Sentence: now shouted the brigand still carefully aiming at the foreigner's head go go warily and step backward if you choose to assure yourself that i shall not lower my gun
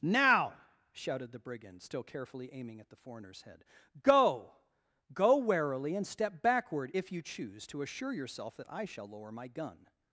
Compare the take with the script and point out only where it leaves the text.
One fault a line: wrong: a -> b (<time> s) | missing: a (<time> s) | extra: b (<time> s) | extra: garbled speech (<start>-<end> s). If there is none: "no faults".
missing: not (9.1 s)